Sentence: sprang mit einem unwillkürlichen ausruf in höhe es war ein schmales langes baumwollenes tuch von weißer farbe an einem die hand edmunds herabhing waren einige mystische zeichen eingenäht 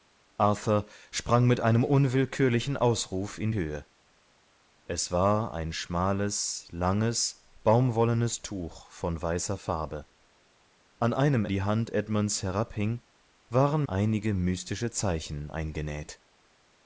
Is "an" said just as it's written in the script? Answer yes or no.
yes